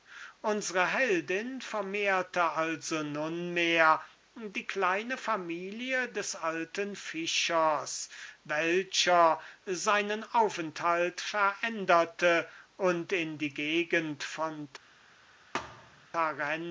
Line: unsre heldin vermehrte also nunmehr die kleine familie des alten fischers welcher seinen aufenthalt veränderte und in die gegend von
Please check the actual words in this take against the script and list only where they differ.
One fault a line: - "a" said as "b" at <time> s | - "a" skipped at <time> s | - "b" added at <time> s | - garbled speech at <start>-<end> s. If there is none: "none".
none